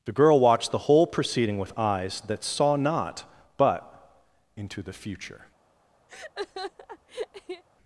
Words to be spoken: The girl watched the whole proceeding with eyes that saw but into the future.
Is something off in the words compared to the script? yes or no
yes